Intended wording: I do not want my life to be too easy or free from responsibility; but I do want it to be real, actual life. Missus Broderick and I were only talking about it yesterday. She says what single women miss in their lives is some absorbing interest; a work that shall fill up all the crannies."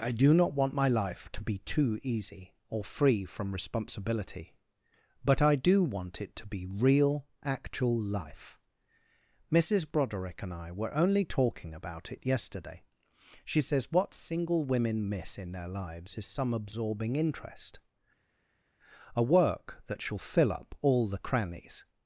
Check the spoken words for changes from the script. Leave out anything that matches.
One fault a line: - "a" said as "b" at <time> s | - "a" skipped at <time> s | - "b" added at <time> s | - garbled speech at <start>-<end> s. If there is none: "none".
none